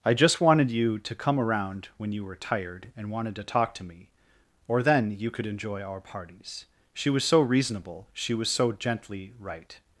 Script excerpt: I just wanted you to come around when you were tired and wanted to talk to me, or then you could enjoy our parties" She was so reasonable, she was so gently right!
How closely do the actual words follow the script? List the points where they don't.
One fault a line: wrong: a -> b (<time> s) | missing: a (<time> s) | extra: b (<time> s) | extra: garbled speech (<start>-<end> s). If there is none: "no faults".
no faults